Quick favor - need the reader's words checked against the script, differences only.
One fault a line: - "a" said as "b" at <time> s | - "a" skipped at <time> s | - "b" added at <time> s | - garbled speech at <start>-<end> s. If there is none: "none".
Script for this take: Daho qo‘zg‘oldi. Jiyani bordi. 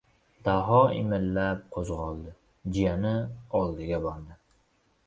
- "imillab" added at 1.0 s
- "oldiga" added at 3.6 s